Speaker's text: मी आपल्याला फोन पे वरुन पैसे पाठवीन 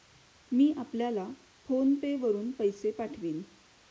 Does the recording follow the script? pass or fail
pass